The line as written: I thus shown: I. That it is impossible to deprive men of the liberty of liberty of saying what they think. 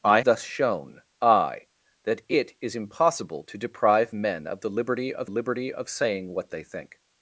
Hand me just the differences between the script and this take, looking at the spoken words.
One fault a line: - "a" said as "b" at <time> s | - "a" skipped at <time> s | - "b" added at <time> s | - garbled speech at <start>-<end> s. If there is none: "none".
none